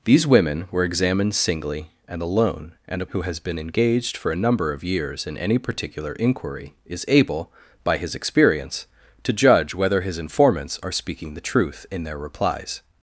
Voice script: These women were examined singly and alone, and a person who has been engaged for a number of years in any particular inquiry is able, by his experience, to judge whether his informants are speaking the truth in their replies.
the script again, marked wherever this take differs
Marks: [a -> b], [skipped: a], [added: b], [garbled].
These women were examined singly and alone, and a [skipped: person] who has been engaged for a number of years in any particular inquiry is able, by his experience, to judge whether his informants are speaking the truth in their replies.